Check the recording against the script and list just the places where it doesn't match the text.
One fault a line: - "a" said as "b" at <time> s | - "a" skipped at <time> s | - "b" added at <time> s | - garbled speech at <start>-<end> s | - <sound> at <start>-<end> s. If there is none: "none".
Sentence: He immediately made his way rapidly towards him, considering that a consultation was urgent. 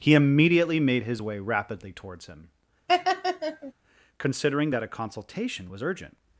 - laugh at 2.9-3.7 s